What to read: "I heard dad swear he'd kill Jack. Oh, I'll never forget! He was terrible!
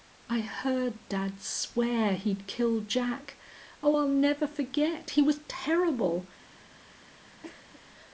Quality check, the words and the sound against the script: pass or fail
fail